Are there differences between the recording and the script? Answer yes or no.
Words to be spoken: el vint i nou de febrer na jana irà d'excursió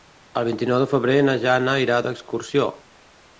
no